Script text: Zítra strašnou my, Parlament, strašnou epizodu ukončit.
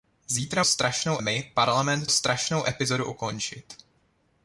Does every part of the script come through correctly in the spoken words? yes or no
yes